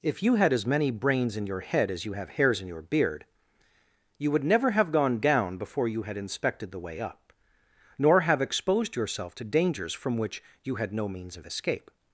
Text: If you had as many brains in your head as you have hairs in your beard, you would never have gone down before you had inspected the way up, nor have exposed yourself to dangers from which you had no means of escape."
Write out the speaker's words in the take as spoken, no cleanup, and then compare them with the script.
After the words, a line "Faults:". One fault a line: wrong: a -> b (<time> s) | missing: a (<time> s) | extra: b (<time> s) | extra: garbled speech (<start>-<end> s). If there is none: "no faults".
If you had as many brains in your head as you have hairs in your beard, you would never have gone down before you had inspected the way up, nor have exposed yourself to dangers from which you had no means of escape."
Faults:
no faults